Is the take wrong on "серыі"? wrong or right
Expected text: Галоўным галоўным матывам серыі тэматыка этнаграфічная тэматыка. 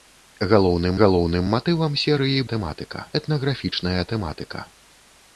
right